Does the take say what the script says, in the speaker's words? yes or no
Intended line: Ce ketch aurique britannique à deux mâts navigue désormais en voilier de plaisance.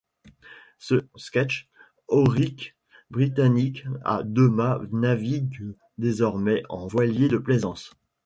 yes